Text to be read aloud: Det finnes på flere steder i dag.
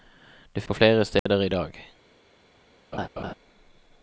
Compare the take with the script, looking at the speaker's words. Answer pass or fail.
fail